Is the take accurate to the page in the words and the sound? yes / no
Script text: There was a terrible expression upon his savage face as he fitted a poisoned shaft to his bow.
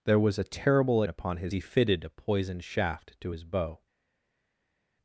no